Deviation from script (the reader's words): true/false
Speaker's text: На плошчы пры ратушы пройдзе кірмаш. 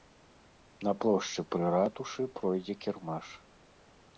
false